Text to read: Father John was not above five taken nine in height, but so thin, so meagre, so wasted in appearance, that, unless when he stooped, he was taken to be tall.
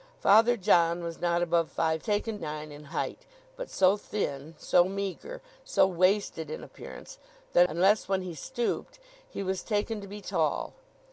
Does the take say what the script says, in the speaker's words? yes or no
yes